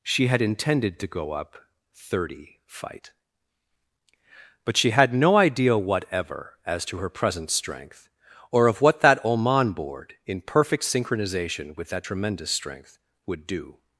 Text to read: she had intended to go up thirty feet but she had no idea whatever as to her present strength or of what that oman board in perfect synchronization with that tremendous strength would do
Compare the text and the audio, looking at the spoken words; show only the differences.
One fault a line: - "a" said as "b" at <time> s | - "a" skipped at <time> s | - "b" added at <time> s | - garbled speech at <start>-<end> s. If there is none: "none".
- "feet" said as "fight" at 2.6 s